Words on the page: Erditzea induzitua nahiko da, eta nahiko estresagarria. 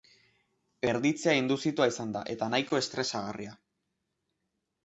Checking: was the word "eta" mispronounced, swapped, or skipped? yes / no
no